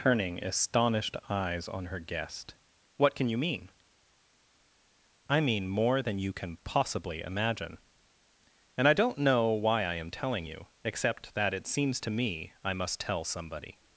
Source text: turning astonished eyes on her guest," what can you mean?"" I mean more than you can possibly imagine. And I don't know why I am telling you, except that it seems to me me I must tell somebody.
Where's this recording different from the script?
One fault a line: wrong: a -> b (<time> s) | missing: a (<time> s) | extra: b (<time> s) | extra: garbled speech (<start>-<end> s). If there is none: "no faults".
missing: me (12.5 s)